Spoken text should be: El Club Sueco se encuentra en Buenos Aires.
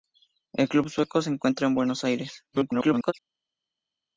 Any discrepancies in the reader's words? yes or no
yes